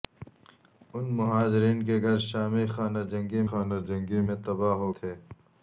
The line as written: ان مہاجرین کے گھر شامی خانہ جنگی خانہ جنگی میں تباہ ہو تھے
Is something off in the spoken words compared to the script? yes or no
no